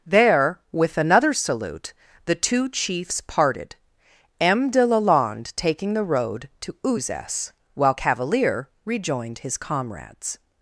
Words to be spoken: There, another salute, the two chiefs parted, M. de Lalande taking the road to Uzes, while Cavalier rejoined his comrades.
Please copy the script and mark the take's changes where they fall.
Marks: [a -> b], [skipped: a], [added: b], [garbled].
There, [added: with] another salute, the two chiefs parted, M. de Lalande taking the road to Uzes, while Cavalier rejoined his comrades.